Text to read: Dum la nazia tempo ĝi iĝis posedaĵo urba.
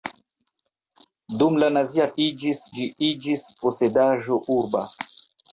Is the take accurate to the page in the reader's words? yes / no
no